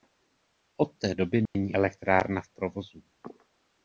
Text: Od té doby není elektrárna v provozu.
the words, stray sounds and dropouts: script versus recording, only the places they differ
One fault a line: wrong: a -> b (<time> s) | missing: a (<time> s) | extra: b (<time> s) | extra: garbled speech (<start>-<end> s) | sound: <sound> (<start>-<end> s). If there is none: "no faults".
sound: dropout (1.5-1.5 s)